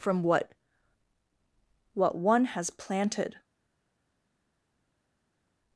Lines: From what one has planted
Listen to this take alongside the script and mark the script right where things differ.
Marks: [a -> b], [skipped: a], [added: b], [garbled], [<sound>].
From what [added: what] one has planted